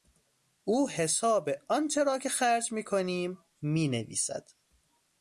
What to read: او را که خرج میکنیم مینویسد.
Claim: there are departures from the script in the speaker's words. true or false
true